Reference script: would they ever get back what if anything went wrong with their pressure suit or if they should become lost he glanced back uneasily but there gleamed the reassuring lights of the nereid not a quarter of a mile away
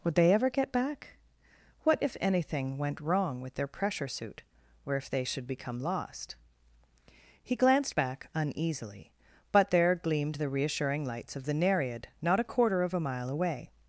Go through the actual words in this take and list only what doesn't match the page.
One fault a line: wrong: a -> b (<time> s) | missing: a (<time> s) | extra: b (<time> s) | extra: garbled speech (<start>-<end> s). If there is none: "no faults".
no faults